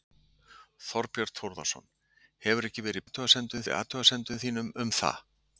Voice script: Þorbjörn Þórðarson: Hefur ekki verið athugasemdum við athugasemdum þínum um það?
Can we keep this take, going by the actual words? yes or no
yes